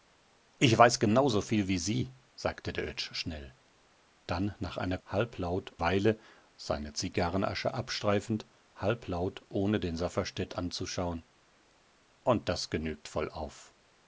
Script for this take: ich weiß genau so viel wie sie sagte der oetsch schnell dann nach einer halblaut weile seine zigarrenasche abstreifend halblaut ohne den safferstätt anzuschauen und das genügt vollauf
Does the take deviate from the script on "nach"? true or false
false